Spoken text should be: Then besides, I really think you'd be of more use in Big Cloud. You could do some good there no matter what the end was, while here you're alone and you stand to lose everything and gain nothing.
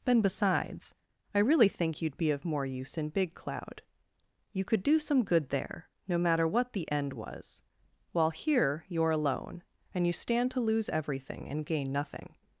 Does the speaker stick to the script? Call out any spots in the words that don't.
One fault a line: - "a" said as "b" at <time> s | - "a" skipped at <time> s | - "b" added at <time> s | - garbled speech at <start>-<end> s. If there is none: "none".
none